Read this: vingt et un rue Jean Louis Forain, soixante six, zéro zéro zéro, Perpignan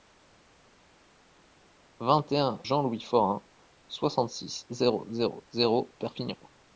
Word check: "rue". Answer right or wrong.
wrong